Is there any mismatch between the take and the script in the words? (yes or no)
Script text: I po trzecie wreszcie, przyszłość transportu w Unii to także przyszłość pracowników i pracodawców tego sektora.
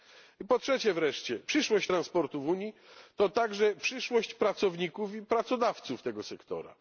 no